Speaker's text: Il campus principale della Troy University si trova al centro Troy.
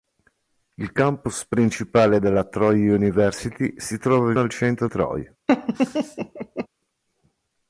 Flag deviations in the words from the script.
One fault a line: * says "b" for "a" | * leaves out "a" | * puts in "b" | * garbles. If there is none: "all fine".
all fine